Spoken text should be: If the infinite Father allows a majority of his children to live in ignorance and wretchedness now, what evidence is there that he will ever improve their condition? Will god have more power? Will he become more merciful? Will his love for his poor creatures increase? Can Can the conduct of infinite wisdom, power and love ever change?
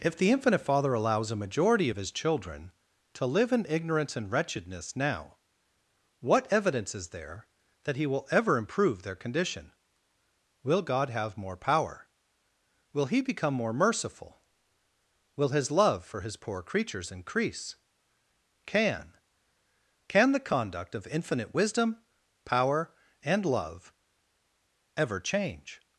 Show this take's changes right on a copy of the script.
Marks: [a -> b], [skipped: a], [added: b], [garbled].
If the infinite Father allows a majority of his children to live in ignorance and wretchedness now, what evidence is there that he will ever improve their condition? Will god have more power? Will he become more merciful? Will his love for his poor creatures increase? Can Can the conduct of infinite wisdom, power and love ever change?